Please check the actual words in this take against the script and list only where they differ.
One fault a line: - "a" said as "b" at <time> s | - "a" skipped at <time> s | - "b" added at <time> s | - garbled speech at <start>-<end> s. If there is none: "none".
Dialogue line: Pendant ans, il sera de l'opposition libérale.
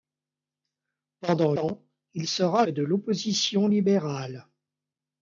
none